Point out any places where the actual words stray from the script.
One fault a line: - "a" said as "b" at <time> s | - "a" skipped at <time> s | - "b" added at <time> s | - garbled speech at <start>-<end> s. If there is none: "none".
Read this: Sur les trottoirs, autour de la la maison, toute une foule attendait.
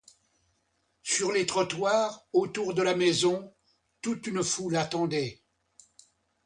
- "la" skipped at 2.9 s